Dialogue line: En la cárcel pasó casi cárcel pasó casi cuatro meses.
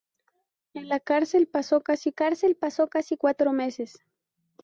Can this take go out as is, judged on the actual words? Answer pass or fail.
pass